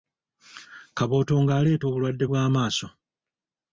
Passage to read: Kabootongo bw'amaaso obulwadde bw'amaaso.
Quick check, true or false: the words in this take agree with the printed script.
false